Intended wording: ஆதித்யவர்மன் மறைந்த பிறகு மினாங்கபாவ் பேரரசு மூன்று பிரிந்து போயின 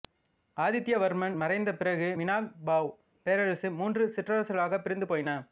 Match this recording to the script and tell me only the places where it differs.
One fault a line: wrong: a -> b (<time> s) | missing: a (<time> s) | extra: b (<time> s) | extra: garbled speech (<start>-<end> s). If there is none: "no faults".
extra: சிற்றரசுகளாகப் (4.2 s)